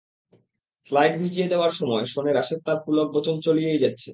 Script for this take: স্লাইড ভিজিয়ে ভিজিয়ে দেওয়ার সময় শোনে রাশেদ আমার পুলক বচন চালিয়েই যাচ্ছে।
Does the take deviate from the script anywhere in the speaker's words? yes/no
yes